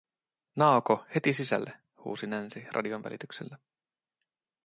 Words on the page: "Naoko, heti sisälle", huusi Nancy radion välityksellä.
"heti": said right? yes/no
yes